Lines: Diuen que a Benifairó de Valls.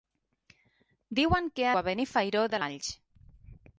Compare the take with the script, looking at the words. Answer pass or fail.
pass